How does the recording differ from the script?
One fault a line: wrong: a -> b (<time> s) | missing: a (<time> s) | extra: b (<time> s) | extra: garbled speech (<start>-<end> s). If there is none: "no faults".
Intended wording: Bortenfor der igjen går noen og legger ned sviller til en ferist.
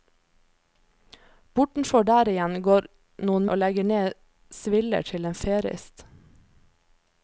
no faults